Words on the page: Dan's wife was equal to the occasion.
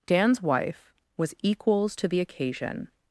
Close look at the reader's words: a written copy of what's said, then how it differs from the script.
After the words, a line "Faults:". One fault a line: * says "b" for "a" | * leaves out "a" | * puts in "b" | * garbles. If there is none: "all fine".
Dan's wife was equals to the occasion.
Faults:
* says "equals" for "equal"